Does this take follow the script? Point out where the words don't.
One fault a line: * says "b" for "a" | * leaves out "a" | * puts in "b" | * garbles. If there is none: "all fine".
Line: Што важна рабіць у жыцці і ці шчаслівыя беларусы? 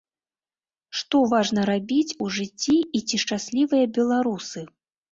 all fine